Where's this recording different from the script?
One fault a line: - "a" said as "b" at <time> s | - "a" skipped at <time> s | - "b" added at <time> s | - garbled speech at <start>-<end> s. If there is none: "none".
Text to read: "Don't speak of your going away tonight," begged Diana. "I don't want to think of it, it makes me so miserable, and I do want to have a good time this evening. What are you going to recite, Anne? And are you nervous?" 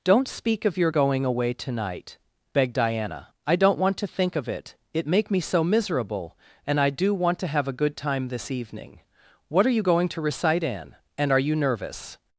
- "makes" said as "make" at 5.1 s